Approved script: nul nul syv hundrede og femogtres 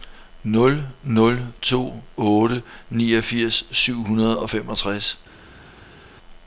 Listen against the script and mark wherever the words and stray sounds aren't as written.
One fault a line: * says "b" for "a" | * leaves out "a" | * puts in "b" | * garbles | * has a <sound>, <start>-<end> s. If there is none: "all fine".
* puts in "to otte niogfirs"